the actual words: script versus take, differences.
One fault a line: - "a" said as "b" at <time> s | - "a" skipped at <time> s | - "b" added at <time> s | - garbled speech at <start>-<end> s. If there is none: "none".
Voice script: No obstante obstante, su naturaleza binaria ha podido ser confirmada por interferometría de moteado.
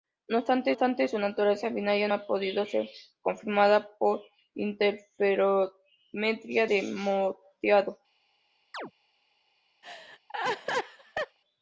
none